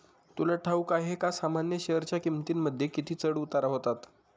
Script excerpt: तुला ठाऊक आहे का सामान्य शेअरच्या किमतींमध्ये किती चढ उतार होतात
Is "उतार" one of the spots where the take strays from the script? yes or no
no